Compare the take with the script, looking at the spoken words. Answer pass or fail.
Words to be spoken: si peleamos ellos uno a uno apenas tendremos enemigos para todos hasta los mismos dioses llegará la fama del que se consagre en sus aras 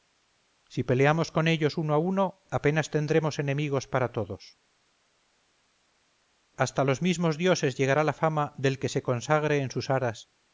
fail